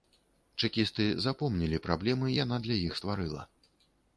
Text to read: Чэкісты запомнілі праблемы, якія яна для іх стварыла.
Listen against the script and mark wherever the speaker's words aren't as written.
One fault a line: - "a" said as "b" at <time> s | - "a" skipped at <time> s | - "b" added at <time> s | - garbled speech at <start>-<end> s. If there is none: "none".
- "якія" skipped at 2.3 s